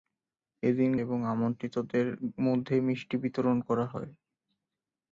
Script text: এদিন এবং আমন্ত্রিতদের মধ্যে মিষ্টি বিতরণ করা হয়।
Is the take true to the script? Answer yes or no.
yes